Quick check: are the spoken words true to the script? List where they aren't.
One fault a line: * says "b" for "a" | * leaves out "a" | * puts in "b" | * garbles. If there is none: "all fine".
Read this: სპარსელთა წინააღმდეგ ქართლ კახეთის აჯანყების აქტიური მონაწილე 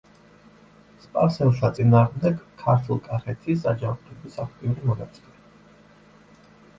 all fine